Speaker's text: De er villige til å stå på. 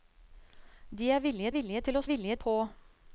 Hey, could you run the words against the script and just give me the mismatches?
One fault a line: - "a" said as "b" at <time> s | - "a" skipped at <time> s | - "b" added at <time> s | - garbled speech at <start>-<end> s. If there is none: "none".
- "villige" added at 1.5 s
- "stå" said as "villige" at 2.0 s